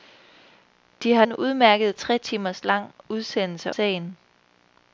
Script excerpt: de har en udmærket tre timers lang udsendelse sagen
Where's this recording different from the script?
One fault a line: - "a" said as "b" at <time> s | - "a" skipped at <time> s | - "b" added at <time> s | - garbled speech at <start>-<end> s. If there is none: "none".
none